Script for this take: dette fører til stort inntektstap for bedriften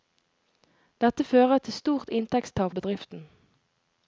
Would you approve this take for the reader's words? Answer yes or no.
no